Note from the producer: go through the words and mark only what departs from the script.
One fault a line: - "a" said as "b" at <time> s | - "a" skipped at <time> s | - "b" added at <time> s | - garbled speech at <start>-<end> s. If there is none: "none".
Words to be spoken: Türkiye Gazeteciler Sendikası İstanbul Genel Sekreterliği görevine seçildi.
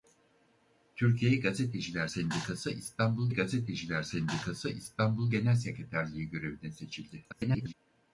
- "Gazeteciler Sendikası İstanbul" added at 3.3 s
- garbled speech at 7.3-7.7 s